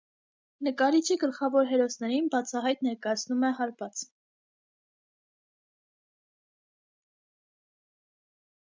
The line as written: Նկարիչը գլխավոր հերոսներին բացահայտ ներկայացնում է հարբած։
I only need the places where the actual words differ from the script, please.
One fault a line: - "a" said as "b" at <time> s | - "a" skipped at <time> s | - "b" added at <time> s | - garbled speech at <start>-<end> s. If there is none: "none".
none